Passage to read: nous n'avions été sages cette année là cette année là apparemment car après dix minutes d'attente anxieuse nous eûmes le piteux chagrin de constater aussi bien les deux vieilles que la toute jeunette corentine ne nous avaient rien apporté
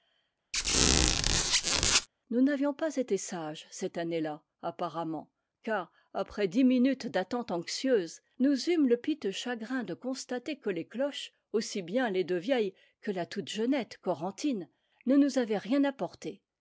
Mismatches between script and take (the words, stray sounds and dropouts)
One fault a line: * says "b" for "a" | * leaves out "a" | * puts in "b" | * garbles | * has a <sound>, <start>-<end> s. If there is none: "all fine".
* has a squeak, 0.5-2.1 s
* puts in "pas"
* leaves out "cette année là"
* puts in "que les cloches"